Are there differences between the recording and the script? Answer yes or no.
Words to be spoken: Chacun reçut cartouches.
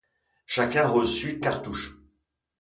no